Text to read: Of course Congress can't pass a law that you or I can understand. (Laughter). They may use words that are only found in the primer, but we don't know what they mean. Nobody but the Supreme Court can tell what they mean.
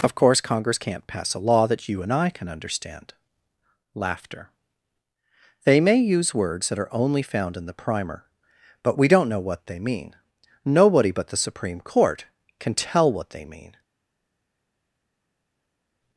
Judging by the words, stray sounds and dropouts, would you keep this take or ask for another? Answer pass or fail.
fail